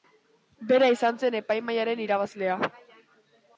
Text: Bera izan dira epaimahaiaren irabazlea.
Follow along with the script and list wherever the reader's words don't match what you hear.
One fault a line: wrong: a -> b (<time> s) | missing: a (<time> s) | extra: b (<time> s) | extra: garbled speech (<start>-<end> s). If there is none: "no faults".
wrong: dira -> zen (1.2 s)